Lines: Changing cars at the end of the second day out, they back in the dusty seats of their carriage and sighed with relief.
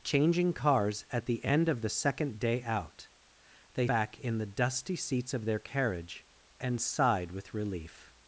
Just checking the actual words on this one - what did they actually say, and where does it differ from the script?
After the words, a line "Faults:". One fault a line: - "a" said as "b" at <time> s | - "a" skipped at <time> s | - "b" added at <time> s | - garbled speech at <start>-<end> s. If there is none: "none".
Changing cars at the end of the second day out, they back in the dusty seats of their carriage and sighed with relief.
Faults:
none